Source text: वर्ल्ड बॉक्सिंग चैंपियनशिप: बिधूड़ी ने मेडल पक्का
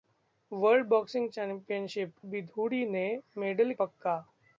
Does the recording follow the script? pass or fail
pass